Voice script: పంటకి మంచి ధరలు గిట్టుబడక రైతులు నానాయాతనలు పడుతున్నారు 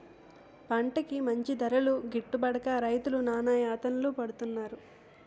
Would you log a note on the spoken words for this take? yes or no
no